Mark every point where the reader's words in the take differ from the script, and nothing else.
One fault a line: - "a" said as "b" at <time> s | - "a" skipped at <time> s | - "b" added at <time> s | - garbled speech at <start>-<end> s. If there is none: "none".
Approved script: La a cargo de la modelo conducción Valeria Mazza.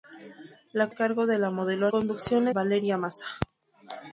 none